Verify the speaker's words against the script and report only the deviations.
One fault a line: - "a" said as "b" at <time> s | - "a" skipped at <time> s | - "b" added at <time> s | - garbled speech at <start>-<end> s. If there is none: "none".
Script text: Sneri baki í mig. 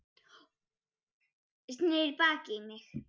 none